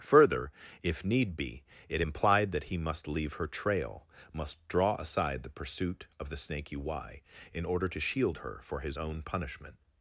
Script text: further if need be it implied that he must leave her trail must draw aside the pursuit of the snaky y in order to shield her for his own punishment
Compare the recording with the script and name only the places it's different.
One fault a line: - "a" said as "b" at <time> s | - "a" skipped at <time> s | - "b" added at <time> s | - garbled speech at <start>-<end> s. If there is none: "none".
none